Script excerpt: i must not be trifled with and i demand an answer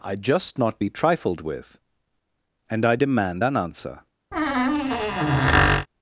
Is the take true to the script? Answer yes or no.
no